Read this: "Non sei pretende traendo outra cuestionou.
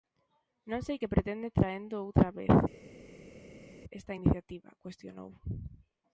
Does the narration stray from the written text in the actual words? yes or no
yes